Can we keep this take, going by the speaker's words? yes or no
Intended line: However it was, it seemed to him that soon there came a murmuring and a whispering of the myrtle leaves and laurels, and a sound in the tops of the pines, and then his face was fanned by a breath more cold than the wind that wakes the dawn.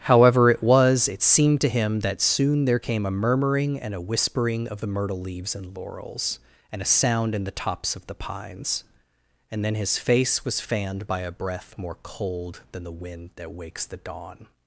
yes